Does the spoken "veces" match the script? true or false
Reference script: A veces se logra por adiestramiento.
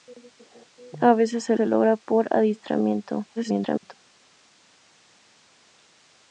true